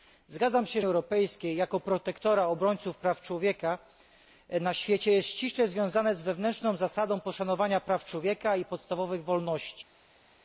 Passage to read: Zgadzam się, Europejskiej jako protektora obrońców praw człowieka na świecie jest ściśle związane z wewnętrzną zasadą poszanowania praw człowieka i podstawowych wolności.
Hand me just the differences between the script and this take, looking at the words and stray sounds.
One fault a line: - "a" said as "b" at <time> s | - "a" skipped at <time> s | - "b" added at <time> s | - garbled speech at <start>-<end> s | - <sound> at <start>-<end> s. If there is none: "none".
none